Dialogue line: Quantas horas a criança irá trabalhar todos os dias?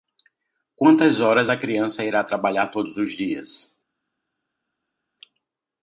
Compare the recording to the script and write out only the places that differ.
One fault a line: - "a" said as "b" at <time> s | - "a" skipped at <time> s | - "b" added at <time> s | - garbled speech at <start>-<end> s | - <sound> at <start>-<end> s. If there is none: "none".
none